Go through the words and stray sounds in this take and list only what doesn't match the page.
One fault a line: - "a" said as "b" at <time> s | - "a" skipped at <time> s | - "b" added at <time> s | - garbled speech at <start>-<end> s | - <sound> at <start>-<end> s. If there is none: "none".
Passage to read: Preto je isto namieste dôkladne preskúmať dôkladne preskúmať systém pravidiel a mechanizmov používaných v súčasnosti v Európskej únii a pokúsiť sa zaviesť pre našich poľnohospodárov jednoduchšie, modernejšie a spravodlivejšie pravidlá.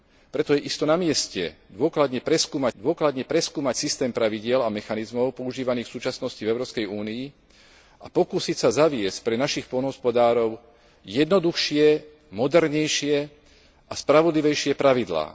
none